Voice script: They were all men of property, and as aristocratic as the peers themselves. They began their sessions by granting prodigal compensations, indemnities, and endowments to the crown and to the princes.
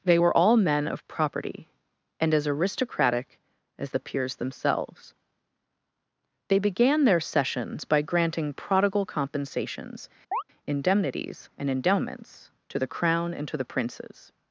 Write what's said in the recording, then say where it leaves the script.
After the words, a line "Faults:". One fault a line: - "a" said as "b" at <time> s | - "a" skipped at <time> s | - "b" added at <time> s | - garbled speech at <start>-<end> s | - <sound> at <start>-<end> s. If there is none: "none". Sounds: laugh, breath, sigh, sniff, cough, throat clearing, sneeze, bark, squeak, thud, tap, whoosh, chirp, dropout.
They were all men of property, and as aristocratic as the peers themselves. They began their sessions by granting prodigal compensations, indemnities, and endowments to the crown and to the princes.
Faults:
- chirp at 10.3-10.4 s